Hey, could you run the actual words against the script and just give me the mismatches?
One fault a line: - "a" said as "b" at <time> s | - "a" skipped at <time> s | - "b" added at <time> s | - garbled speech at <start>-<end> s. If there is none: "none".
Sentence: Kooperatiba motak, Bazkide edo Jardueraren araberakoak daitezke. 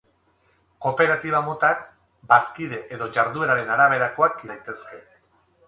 none